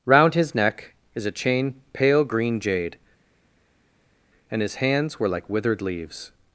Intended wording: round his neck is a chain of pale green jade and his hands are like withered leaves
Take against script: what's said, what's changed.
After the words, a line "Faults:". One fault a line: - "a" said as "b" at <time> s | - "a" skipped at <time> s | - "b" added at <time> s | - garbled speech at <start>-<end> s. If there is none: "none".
round his neck is a chain pale green jade and his hands were like withered leaves
Faults:
- "of" skipped at 1.8 s
- "are" said as "were" at 5.2 s